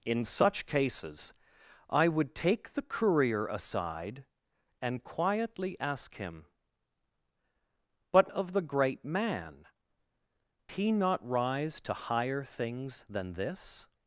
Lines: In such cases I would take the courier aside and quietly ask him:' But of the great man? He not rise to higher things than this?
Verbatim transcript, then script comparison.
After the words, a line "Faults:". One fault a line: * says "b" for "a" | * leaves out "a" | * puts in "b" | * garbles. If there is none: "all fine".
In such cases I would take the courier aside and quietly ask him:' But of the great man? He not rise to higher things than this?
Faults:
all fine